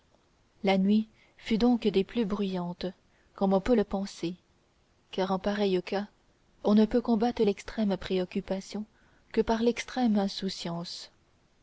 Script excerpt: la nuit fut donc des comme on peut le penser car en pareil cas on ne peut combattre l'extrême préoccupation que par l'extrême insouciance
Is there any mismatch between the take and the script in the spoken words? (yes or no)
yes